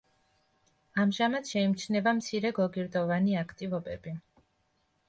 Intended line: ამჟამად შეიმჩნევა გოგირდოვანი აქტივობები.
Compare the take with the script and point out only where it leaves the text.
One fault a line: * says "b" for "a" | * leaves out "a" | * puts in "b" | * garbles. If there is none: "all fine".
* puts in "მცირე"